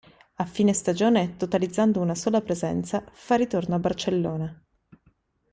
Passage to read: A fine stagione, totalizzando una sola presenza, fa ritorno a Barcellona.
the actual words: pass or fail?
pass